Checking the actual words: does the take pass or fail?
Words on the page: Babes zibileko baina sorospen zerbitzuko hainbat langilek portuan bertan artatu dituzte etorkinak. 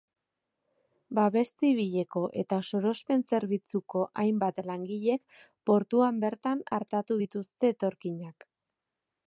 fail